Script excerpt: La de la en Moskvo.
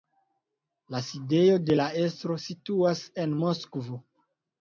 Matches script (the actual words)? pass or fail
fail